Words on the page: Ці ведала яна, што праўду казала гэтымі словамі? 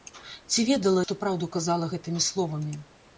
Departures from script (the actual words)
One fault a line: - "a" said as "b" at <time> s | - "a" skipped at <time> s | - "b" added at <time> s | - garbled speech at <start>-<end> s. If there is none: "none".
- "яна" skipped at 1.0 s